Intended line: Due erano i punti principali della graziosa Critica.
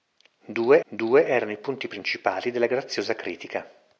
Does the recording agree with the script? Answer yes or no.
no